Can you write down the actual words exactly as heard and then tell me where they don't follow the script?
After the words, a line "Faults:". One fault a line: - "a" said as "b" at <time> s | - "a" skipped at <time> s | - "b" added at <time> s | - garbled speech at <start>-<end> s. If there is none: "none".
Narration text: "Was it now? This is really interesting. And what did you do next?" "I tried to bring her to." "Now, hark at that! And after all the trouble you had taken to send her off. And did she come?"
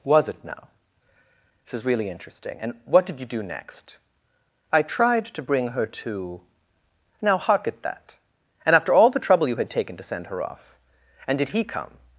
"Was it now? This is really interesting. And what did you do next?" "I tried to bring her to." "Now, hark at that! And after all the trouble you had taken to send her off. And did he come?"
Faults:
- "she" said as "he" at 11.5 s